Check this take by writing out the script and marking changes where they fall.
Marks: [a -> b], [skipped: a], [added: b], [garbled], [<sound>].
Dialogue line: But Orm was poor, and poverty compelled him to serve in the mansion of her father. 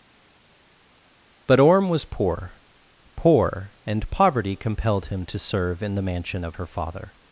But Orm was poor, [added: poor] and poverty compelled him to serve in the mansion of her father.